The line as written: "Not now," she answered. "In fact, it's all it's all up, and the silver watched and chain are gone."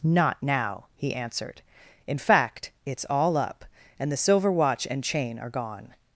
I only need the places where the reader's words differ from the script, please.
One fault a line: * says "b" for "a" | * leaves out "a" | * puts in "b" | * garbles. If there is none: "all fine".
* says "he" for "she"
* leaves out "it's all"
* says "watch" for "watched"